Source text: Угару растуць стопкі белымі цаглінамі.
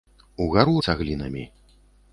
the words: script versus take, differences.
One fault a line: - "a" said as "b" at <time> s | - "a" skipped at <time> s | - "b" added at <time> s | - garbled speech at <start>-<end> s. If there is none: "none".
- "растуць стопкі белымі" skipped at 0.7 s